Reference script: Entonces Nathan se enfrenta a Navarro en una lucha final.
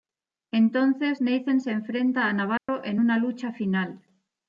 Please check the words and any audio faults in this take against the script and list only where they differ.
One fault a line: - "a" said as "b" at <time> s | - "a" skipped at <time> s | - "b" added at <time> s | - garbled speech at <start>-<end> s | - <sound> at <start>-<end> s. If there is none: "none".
- dropout at 2.6-2.7 s